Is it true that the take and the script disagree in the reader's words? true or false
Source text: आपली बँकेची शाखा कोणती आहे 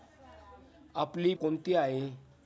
true